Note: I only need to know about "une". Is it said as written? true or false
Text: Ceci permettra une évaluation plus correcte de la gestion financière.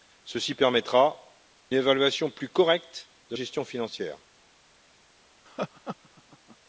false